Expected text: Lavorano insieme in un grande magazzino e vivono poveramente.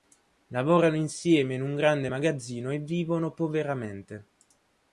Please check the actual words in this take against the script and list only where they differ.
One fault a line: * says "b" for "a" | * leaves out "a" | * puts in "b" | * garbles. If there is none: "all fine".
all fine